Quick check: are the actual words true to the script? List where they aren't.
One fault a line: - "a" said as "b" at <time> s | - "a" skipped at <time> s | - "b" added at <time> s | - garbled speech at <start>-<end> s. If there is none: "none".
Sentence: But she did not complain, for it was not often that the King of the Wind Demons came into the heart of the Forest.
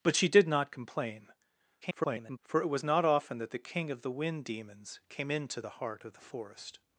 - garbled speech at 1.8-2.4 s